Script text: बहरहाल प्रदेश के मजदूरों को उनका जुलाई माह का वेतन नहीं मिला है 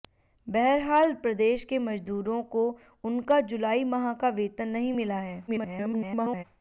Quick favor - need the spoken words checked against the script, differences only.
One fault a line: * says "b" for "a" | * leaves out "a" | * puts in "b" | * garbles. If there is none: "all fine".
* garbles